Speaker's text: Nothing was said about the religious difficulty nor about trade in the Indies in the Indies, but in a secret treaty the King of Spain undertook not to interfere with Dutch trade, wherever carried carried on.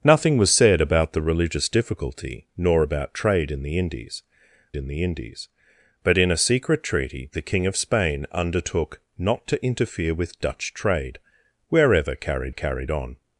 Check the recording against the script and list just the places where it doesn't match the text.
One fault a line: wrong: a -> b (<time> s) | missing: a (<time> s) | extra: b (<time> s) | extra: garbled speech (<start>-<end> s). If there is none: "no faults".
no faults